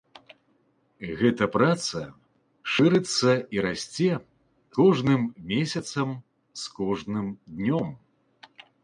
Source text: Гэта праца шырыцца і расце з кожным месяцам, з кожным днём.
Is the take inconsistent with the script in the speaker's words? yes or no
yes